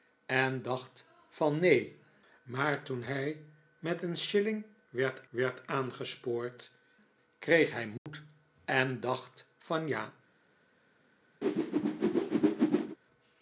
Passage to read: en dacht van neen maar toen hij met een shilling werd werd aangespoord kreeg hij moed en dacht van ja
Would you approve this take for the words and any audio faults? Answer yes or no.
no